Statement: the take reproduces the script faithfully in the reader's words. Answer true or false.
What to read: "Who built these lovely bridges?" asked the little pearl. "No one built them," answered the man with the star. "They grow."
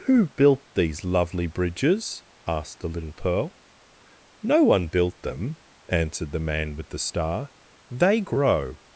true